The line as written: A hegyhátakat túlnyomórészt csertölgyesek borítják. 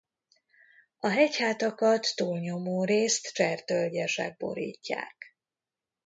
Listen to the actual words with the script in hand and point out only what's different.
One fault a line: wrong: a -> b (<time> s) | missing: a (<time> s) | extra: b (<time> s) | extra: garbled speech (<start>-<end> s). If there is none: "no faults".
no faults